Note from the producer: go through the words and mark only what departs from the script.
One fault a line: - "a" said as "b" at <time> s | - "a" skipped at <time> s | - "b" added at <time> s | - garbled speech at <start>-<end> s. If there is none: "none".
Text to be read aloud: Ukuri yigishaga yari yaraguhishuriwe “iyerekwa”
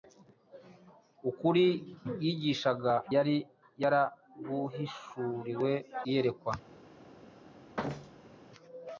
none